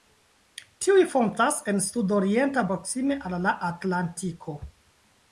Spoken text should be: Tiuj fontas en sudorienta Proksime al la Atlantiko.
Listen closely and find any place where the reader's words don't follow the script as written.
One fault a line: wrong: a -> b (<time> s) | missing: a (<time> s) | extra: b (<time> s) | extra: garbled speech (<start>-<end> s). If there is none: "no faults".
no faults